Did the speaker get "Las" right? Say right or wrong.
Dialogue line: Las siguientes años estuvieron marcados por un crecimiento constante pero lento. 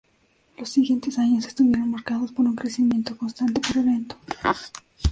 wrong